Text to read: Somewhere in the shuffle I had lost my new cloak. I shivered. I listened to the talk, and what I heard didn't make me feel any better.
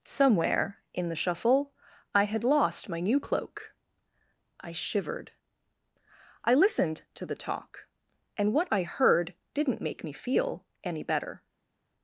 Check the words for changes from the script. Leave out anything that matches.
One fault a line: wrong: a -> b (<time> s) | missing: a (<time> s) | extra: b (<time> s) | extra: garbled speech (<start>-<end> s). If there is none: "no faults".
no faults